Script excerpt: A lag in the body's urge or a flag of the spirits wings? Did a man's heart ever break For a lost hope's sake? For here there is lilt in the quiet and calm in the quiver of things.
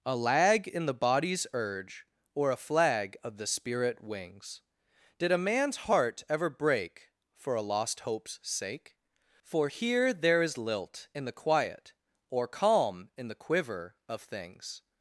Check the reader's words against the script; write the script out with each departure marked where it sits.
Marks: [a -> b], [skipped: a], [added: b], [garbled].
A lag in the body's urge or a flag of the [spirits -> spirit] wings? Did a man's heart ever break For a lost hope's sake? For here there is lilt in the quiet [and -> or] calm in the quiver of things.